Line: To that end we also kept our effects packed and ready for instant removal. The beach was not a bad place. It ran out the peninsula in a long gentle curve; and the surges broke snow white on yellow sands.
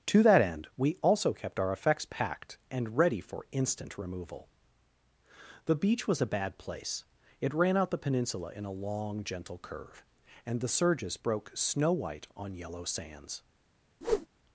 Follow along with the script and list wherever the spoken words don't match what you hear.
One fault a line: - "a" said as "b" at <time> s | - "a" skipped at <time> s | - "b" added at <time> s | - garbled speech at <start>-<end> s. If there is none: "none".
- "not" skipped at 6.2 s